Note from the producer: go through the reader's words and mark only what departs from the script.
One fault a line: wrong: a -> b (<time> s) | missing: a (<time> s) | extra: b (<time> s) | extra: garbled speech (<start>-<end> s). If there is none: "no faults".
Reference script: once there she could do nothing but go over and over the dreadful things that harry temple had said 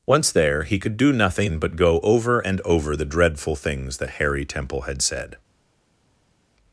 wrong: she -> he (0.6 s)